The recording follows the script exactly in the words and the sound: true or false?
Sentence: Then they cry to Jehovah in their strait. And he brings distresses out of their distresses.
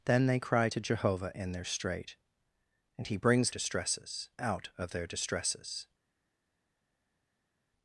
true